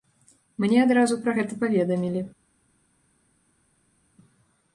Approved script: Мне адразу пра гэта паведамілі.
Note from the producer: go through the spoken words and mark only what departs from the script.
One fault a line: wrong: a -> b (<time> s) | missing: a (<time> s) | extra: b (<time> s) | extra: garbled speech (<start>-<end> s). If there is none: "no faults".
no faults